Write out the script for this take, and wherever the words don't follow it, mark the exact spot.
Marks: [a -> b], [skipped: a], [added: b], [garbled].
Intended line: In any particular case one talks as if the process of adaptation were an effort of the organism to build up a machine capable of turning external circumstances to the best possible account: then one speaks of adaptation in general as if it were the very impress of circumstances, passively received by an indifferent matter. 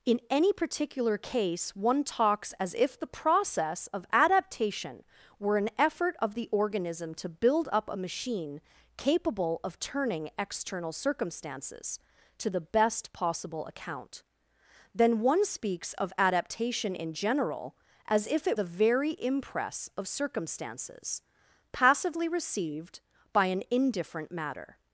In any particular case one talks as if the process of adaptation were an effort of the organism to build up a machine capable of turning external circumstances to the best possible account: then one speaks of adaptation in general as if it [skipped: were] the very impress of circumstances, passively received by an indifferent matter.